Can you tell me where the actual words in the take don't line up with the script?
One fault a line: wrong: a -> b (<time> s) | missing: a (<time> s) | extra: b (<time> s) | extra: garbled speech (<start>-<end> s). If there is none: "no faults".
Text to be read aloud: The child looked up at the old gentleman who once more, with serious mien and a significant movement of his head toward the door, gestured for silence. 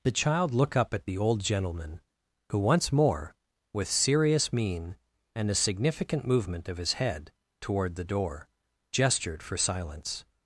wrong: looked -> look (0.5 s)